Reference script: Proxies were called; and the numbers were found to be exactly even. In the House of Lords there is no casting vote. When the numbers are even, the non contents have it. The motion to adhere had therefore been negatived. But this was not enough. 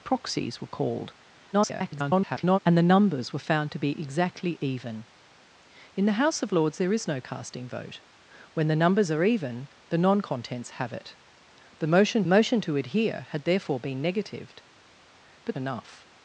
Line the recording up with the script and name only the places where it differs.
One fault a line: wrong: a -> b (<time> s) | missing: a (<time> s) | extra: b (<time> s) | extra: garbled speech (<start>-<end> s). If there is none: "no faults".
extra: garbled speech (1.5-2.6 s)
extra: motion (12.3 s)
missing: this was not (15.6 s)